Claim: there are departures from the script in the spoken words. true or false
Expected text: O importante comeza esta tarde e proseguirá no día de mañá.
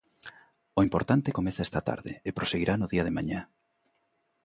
false